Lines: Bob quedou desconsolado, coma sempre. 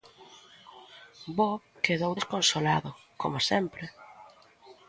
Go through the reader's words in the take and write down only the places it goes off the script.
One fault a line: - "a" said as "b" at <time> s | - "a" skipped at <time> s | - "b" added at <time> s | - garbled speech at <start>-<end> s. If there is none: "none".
none